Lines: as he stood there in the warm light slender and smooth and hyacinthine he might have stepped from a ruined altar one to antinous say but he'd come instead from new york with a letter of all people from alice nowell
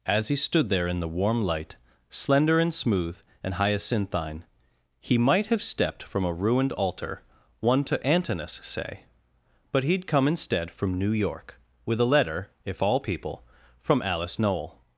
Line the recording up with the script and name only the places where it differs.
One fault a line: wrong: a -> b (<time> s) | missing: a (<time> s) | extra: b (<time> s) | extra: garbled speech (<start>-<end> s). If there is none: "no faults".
wrong: of -> if (12.6 s)